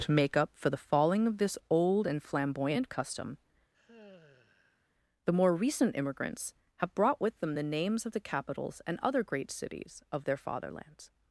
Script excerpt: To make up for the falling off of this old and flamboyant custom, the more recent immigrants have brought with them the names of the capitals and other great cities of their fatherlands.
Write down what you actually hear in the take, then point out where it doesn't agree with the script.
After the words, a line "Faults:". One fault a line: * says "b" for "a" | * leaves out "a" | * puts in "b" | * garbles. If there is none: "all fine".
To make up for the falling of this old and flamboyant custom, the more recent immigrants have brought with them the names of the capitals and other great cities of their fatherlands.
Faults:
* leaves out "off"